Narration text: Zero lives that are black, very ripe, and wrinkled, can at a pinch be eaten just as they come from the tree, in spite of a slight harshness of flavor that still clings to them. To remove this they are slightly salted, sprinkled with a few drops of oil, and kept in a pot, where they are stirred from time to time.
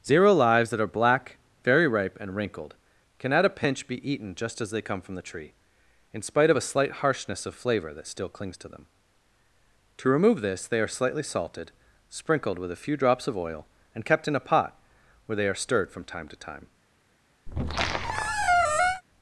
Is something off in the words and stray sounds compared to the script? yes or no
yes